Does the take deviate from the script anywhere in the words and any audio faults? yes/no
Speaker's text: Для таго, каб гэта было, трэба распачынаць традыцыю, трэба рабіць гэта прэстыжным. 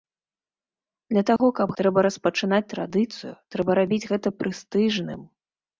yes